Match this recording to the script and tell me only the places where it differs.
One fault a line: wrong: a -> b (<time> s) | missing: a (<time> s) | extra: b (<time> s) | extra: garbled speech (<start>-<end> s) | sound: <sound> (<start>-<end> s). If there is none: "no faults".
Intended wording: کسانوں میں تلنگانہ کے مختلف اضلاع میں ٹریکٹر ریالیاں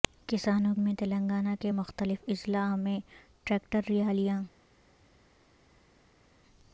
no faults